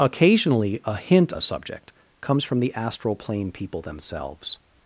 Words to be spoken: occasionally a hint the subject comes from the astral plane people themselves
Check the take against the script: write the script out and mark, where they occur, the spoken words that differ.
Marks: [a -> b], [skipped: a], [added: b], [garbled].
occasionally a hint the subject comes from the astral plane people themselves